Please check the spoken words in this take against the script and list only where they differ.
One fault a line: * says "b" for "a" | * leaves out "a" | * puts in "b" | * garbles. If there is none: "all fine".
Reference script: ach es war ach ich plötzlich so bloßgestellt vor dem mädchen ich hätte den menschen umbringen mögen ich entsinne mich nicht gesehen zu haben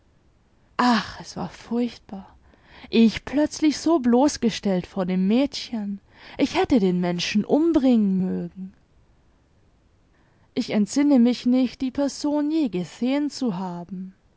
* says "furchtbar" for "ach"
* puts in "die person je"